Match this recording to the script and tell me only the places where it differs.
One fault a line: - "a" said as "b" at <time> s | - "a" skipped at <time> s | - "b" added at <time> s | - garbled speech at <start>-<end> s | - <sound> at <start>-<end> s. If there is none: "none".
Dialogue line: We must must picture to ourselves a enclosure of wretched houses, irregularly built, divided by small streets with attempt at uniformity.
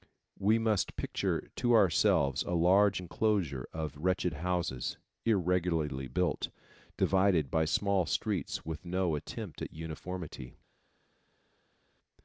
- "must" skipped at 1.0 s
- "large" added at 2.5 s
- "no" added at 8.8 s